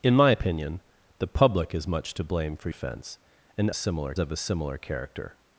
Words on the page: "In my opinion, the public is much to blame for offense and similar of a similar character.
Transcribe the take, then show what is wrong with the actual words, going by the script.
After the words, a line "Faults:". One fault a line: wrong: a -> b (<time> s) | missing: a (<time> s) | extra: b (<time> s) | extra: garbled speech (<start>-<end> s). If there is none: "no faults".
"In my opinion, the public is much to blame for offense and similar of a similar character.
Faults:
no faults